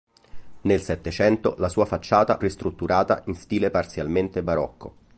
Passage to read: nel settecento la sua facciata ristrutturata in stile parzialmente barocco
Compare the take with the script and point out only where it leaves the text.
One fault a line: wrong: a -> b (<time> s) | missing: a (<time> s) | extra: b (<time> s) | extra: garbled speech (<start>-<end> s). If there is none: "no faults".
no faults